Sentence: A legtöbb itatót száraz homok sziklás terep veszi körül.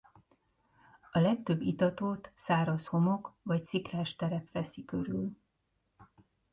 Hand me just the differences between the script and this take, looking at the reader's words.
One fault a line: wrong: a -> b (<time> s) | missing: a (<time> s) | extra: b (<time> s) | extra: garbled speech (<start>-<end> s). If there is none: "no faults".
extra: vagy (3.4 s)